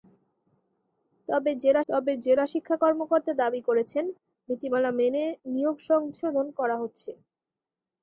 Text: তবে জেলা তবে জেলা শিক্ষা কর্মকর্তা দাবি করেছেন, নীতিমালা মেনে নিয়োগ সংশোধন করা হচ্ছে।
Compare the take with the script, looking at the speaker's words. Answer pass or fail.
pass